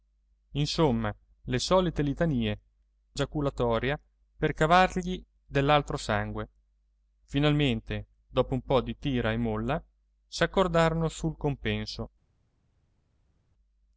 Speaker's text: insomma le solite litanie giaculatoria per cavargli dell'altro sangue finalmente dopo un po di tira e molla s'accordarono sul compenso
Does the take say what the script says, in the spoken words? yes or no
yes